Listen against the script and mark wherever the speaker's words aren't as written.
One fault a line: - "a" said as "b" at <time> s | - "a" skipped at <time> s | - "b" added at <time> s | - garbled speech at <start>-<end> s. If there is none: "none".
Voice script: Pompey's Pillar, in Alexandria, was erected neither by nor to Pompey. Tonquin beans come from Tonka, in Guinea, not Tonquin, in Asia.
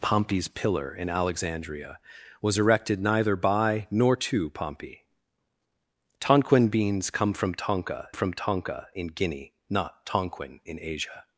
- "from Tonka" added at 8.1 s